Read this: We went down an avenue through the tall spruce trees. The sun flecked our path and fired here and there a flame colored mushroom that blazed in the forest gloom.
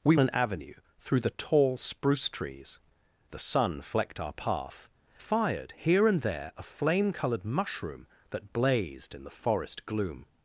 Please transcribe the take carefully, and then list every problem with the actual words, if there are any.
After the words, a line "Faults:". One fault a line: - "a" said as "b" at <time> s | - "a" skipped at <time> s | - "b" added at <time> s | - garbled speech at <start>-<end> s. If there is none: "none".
We an avenue through the tall spruce trees. The sun flecked our path fired here and there a flame colored mushroom that blazed in the forest gloom.
Faults:
- "went down" skipped at 0.1 s
- "and" skipped at 4.9 s